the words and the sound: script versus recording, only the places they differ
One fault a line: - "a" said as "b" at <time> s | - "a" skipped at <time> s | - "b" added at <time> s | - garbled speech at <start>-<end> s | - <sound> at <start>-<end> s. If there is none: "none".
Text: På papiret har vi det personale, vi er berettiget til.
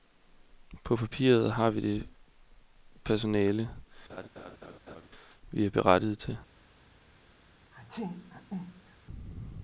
- laugh at 4.1-5.1 s
- sneeze at 7.7-9.0 s